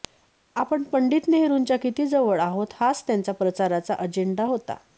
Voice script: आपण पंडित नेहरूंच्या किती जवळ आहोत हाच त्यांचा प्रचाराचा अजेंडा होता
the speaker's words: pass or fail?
pass